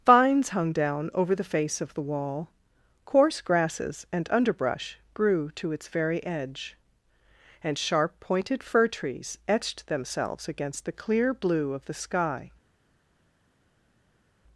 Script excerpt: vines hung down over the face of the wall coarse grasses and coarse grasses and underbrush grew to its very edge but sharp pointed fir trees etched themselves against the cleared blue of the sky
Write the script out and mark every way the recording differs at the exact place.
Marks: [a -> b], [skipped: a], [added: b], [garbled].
vines hung down over the face of the wall coarse grasses and [skipped: coarse grasses and] underbrush grew to its very edge [but -> and] sharp pointed fir trees etched themselves against the [cleared -> clear] blue of the sky